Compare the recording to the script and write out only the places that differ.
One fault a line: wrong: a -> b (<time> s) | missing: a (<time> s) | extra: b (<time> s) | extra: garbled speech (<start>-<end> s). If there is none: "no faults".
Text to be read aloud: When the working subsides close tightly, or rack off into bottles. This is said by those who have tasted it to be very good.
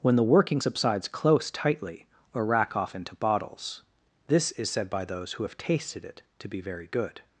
no faults